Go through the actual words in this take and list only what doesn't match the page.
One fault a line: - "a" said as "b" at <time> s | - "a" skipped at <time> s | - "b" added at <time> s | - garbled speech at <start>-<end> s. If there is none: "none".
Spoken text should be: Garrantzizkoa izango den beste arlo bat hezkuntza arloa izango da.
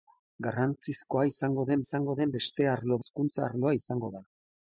- "izango den" added at 1.8 s
- "bat" skipped at 3.0 s